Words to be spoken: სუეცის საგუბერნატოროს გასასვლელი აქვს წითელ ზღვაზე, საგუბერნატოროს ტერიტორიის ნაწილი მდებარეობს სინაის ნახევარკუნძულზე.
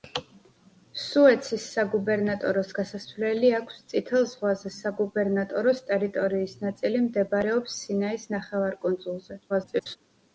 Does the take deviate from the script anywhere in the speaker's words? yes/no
yes